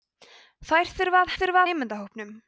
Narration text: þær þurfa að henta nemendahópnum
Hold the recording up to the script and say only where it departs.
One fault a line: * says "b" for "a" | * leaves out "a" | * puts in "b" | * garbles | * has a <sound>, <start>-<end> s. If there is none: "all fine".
* says "þurfa" for "henta"